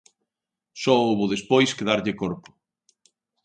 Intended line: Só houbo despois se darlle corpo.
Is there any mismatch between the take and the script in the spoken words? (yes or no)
yes